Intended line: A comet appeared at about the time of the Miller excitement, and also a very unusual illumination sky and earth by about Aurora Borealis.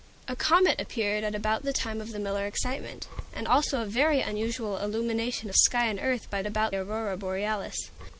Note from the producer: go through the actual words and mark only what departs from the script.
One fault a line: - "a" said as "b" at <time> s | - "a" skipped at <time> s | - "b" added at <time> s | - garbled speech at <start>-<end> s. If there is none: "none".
none